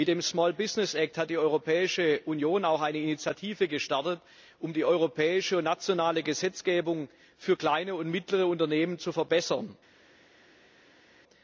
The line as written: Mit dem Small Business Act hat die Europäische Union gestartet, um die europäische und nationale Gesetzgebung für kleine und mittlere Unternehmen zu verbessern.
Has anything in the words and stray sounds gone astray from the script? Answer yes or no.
yes